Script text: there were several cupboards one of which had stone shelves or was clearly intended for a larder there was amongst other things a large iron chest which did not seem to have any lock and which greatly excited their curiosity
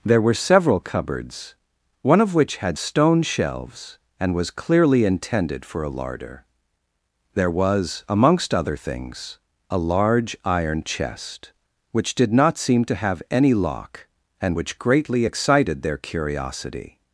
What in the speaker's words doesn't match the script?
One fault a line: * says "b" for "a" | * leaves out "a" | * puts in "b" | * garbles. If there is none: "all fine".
* says "and" for "or"